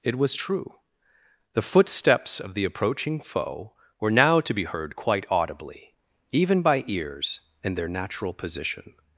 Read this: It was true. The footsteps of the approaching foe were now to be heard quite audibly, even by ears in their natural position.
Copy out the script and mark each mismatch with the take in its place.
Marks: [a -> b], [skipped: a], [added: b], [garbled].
It was true. The footsteps of the approaching foe were now to be heard quite audibly, even by ears in their natural position.